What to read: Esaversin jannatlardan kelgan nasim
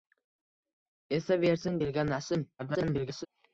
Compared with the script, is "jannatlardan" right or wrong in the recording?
wrong